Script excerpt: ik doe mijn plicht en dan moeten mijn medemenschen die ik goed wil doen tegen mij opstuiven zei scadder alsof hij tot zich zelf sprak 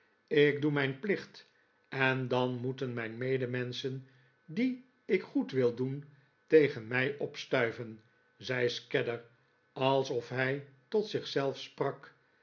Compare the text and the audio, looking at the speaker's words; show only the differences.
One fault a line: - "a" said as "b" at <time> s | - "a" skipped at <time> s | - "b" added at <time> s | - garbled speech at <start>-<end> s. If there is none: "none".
none